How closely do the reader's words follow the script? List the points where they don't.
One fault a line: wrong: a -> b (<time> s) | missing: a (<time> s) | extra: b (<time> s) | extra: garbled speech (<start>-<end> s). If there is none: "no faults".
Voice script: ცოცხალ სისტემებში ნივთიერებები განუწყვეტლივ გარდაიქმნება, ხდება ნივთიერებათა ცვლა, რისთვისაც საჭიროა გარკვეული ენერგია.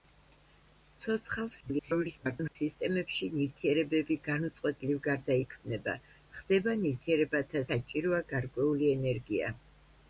extra: garbled speech (1.6-2.6 s)
missing: ცვლა რისთვისაც (7.6 s)